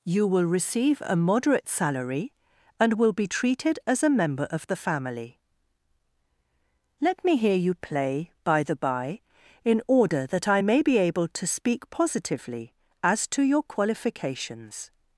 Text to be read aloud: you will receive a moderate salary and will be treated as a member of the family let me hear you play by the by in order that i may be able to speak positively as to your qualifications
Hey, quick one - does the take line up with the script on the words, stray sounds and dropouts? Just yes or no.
yes